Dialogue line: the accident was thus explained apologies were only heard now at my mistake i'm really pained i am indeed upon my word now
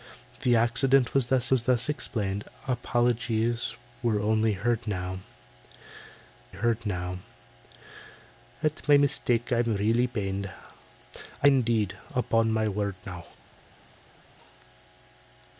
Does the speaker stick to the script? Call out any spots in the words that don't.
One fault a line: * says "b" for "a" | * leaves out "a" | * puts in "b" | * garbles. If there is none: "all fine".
* puts in "was thus"
* puts in "heard now"
* leaves out "am"